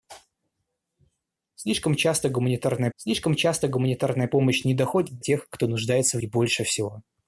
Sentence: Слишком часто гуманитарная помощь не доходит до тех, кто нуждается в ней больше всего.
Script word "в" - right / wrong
wrong